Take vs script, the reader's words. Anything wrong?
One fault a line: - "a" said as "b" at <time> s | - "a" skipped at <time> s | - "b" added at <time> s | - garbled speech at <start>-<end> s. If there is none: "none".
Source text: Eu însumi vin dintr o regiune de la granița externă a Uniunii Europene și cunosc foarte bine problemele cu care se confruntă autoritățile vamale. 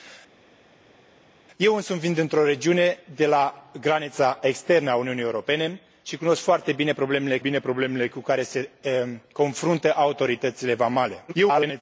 - "bine problemele" added at 7.4 s
- garbled speech at 11.3-11.8 s